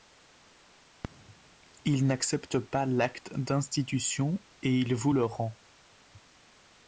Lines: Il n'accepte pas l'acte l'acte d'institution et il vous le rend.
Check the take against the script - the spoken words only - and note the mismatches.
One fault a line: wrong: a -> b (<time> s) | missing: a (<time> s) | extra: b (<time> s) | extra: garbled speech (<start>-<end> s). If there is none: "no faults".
missing: l'acte (3.4 s)